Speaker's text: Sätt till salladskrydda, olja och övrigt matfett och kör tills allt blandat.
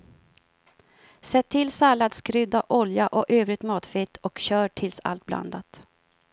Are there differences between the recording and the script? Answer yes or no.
no